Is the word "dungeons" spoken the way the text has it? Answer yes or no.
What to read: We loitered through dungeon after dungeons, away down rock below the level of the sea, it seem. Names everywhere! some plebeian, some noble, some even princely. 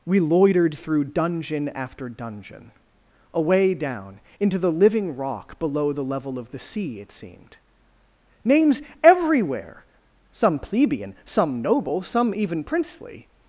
no